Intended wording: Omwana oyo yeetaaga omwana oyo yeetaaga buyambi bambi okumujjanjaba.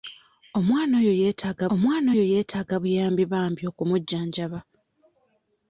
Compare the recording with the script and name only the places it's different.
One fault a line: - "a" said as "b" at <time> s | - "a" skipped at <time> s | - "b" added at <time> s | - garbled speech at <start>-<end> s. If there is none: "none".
none